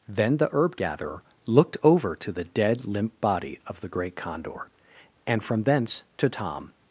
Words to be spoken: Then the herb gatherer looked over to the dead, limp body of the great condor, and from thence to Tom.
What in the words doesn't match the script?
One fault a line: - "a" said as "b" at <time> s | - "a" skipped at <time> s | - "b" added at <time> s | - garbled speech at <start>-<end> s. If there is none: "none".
none